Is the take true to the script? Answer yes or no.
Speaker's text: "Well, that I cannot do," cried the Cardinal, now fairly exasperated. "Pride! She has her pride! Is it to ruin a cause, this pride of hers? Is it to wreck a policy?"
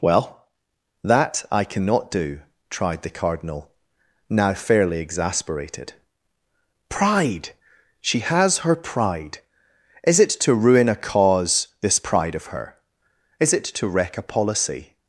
no